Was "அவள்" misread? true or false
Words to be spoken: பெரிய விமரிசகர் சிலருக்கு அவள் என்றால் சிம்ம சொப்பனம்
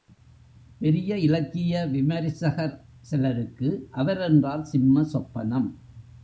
true